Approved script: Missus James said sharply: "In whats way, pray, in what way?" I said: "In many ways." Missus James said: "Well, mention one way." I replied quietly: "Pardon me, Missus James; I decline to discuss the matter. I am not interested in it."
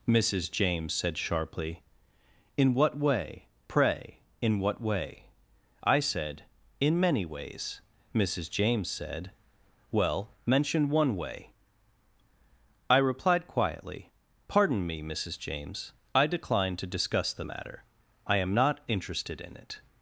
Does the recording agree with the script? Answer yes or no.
no